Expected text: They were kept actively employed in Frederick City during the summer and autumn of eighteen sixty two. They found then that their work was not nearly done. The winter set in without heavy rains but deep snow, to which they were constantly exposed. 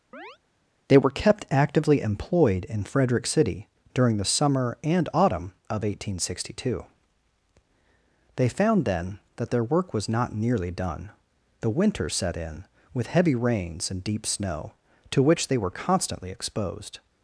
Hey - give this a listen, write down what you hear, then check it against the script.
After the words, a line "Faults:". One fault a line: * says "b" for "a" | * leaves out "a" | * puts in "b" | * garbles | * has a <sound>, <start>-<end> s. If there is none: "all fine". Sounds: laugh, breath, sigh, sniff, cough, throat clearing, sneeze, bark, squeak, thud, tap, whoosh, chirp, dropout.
They were kept actively employed in Frederick City during the summer and autumn of eighteen sixty two. They found then that their work was not nearly done. The winter set in with heavy rains and deep snow, to which they were constantly exposed.
Faults:
* has a chirp, 0.1-0.4 s
* says "with" for "without"
* says "and" for "but"